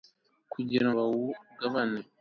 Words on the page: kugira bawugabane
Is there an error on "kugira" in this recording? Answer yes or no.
no